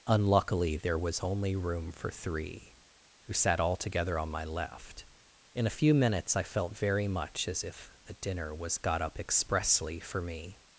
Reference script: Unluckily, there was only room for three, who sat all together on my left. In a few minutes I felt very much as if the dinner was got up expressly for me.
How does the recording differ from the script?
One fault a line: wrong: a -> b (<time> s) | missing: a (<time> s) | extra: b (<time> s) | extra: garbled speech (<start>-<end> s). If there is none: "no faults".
wrong: the -> a (8.1 s)